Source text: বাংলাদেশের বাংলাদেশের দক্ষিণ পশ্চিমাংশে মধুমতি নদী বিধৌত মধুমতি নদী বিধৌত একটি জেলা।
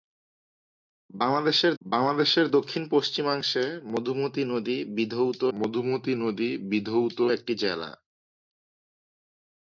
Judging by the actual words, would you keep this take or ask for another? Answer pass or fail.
pass